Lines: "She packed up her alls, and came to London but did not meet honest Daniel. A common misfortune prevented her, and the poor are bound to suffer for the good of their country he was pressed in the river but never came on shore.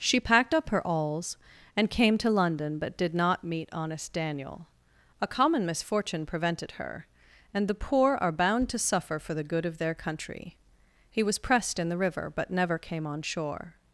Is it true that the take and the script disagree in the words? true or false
false